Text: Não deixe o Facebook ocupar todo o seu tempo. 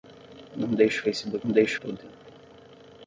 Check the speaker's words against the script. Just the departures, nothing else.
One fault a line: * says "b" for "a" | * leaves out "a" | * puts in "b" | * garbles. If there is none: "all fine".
* says "deixe" for "ocupar"
* leaves out "seu"